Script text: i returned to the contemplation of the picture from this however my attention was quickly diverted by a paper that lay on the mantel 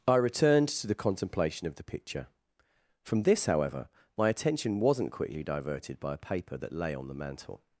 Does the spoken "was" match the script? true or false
false